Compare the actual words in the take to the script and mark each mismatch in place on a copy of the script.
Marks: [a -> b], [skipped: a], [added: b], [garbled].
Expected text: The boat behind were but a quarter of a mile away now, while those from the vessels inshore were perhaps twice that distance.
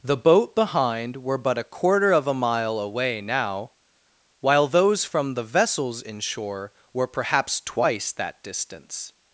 The boat behind were but a quarter of a mile away now, while those from the vessels inshore were perhaps twice that distance.